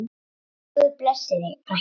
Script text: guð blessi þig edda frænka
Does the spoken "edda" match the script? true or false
false